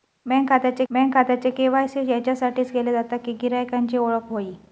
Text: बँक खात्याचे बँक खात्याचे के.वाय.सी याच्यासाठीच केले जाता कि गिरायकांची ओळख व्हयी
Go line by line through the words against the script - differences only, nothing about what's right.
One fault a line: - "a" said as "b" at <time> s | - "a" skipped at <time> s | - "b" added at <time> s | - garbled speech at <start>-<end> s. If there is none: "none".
none